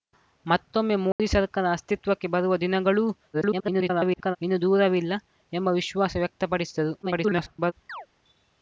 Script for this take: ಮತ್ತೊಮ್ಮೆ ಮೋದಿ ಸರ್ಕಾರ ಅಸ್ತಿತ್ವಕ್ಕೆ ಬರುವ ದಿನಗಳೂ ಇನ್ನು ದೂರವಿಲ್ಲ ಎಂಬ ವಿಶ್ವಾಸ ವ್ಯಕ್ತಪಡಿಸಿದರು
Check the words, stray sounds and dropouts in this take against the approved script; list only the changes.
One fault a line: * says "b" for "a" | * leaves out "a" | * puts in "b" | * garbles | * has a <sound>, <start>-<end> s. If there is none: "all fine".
* has a dropout, 1.1-1.2 s
* garbles
* garbles
* has a chirp, 7.9-8.1 s